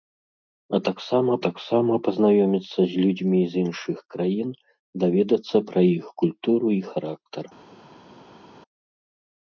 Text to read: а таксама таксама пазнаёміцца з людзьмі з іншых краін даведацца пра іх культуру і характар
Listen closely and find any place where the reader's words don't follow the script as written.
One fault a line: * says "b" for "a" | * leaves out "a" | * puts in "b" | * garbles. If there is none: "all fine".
all fine